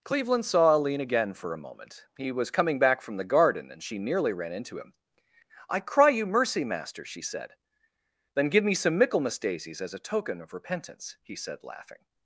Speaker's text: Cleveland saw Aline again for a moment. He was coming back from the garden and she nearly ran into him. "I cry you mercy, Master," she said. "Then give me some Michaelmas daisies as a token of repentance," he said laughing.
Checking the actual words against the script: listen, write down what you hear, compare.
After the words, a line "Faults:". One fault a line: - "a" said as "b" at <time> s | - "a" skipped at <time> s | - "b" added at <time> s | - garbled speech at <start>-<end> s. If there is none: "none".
Cleveland saw Aline again for a moment. He was coming back from the garden and she nearly ran into him. "I cry you mercy, Master," she said. "Then give me some Michaelmas daisies as a token of repentance," he said laughing.
Faults:
none